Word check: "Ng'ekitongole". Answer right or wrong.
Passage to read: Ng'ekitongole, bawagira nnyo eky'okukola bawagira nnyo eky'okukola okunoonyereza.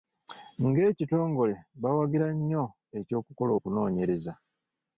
right